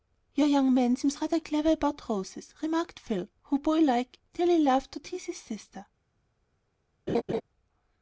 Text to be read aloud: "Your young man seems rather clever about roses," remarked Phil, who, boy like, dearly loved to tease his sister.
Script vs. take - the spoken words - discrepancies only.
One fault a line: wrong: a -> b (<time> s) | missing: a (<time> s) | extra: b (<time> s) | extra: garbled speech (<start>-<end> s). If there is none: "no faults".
no faults